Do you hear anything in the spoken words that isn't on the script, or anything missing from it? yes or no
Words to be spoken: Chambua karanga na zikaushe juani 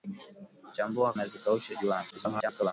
yes